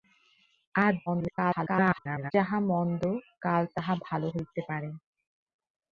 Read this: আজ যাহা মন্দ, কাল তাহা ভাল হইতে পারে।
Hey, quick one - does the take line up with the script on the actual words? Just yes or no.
no